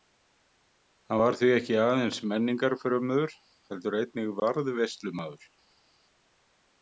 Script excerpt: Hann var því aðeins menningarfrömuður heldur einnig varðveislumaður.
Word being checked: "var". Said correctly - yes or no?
yes